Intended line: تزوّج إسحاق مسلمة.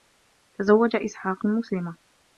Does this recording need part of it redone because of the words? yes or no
no